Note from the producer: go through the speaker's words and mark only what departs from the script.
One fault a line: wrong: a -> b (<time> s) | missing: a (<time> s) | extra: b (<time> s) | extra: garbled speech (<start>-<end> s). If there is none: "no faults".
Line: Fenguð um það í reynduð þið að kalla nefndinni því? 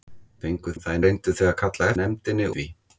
no faults